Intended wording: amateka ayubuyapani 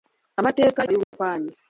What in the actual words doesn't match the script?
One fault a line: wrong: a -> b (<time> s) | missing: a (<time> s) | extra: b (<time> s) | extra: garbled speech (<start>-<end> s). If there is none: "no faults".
no faults